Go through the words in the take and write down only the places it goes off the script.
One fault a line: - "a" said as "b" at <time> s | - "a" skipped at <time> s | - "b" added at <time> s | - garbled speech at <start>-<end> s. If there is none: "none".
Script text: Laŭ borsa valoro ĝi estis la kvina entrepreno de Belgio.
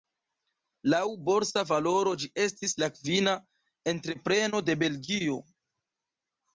none